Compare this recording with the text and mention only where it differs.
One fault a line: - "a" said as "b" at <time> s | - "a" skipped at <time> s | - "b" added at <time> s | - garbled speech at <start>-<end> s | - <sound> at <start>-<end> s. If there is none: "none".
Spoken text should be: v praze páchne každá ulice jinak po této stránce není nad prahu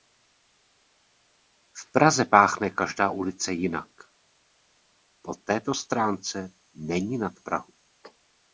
none